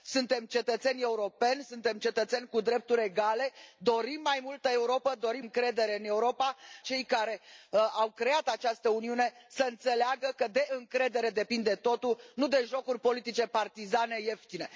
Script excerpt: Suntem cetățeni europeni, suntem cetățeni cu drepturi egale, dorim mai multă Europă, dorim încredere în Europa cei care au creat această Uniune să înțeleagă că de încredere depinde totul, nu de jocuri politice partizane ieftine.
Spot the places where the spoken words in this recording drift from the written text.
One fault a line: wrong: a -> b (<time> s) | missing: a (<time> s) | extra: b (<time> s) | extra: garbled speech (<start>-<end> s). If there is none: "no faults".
no faults